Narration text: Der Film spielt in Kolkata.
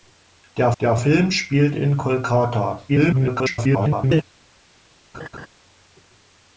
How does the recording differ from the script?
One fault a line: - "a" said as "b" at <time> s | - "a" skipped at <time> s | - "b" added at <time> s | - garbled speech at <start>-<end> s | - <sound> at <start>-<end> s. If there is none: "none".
- "der" added at 0.8 s
- garbled speech at 2.9-4.2 s
- laugh at 5.1-5.5 s